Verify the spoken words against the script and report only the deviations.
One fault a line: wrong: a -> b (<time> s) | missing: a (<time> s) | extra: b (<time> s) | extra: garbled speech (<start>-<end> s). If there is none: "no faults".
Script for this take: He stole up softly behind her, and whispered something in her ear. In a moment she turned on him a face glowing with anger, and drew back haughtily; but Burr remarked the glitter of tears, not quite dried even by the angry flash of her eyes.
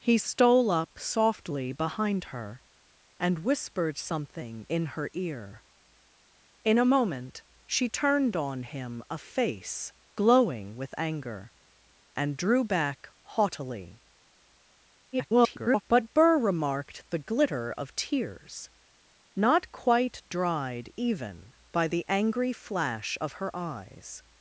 extra: garbled speech (15.1-15.8 s)